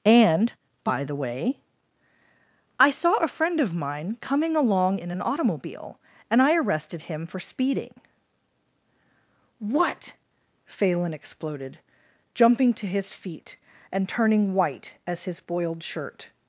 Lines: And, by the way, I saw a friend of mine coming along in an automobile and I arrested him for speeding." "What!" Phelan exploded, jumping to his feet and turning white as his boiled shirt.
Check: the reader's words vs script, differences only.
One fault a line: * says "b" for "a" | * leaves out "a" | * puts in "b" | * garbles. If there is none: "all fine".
all fine